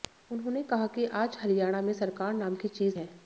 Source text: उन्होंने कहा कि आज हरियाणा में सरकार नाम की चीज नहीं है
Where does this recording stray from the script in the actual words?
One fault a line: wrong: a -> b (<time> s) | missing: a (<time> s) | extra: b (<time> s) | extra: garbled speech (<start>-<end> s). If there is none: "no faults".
missing: नहीं (3.0 s)